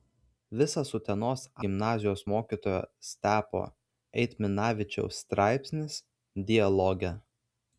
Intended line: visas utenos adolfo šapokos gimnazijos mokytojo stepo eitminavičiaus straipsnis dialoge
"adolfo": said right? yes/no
no